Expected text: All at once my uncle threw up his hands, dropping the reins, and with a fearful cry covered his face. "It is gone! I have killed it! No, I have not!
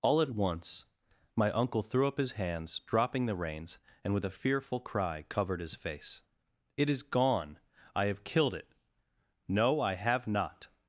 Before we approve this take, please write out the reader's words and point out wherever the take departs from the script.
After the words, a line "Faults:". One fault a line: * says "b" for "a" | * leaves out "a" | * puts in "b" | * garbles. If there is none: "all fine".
All at once my uncle threw up his hands, dropping the reins, and with a fearful cry covered his face. "It is gone! I have killed it! No, I have not!
Faults:
all fine